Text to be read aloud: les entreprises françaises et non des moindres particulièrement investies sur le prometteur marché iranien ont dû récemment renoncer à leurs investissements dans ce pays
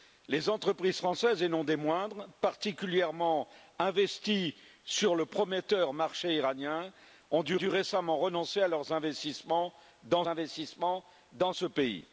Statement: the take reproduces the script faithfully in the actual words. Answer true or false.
false